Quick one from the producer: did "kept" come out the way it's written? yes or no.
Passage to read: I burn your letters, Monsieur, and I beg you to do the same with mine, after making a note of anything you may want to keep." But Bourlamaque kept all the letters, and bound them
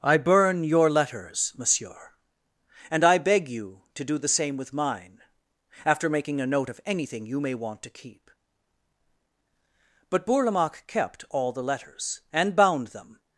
yes